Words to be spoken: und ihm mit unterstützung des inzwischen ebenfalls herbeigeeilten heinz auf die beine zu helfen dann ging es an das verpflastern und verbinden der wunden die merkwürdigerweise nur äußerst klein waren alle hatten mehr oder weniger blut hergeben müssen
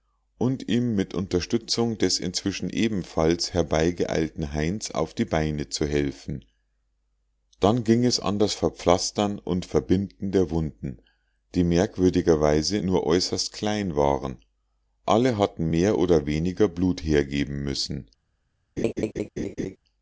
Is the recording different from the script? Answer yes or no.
no